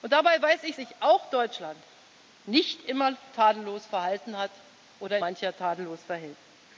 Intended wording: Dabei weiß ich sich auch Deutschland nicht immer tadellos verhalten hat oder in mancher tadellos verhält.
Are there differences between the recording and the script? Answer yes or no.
no